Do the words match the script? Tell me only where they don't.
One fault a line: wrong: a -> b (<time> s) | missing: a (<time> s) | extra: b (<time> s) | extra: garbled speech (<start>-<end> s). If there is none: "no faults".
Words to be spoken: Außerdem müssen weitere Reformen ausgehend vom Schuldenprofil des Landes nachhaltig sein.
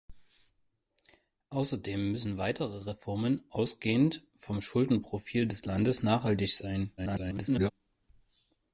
extra: garbled speech (7.0-7.7 s)